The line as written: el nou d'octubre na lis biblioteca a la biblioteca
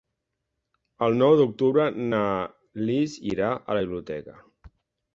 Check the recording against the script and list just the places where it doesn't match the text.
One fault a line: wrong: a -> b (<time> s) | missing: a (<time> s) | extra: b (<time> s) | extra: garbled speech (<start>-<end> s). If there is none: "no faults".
wrong: biblioteca -> irà (3.3 s)